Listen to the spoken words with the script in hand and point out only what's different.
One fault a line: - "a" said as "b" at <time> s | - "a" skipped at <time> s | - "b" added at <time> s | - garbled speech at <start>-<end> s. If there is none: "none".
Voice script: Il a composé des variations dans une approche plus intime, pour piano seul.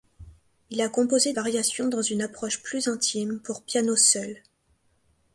- "des" skipped at 1.3 s